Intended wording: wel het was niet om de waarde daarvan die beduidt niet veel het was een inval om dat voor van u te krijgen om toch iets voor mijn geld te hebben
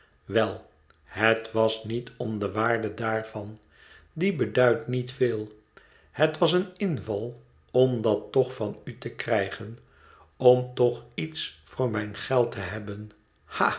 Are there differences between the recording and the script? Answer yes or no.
yes